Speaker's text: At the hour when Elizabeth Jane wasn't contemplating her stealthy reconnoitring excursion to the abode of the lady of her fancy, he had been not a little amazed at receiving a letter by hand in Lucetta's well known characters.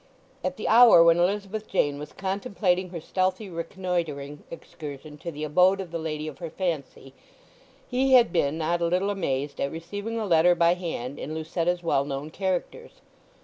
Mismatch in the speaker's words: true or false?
true